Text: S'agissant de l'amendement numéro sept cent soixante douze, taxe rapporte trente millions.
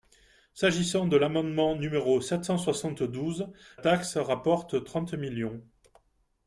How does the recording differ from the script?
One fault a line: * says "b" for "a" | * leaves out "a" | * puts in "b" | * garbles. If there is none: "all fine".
all fine